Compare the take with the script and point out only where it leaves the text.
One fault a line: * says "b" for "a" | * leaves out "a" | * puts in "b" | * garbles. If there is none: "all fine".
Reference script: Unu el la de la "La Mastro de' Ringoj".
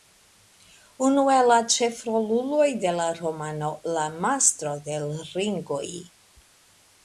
* puts in "ĉefroluloj"
* puts in "romano"
* puts in "l"